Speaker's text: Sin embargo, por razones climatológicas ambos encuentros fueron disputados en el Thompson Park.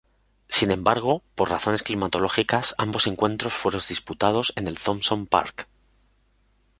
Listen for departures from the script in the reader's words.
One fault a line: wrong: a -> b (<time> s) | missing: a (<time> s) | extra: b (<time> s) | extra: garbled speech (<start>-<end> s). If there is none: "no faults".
no faults